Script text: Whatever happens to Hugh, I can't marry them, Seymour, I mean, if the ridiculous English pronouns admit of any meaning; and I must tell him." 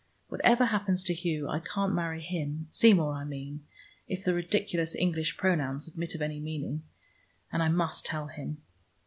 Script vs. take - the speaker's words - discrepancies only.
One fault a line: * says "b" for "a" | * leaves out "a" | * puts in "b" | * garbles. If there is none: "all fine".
* says "him" for "them"